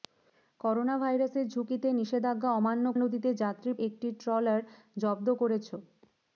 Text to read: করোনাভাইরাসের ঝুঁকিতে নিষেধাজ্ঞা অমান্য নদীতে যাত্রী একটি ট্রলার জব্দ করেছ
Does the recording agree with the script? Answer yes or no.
yes